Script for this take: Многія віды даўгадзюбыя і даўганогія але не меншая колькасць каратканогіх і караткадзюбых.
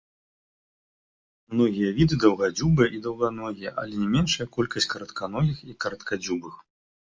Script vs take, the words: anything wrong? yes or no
no